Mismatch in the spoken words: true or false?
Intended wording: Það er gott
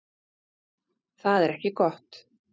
true